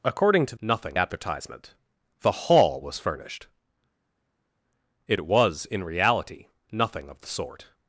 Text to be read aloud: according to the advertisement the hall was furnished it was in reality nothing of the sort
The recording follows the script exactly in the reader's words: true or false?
false